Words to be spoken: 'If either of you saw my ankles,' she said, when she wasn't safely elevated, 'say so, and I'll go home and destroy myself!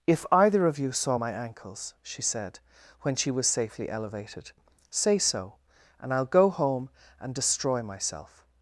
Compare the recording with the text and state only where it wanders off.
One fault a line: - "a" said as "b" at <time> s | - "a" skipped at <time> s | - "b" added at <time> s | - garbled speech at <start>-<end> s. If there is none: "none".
- "wasn't" said as "was" at 3.3 s